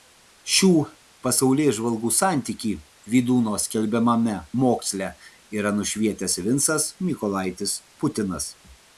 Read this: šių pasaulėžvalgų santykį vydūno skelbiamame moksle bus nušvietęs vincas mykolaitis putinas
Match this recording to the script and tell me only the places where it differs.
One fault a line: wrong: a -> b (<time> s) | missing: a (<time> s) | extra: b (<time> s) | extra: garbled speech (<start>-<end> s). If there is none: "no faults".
wrong: bus -> yra (5.6 s)